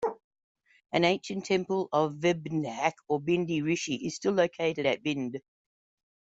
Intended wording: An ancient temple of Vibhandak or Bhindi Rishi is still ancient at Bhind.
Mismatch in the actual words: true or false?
true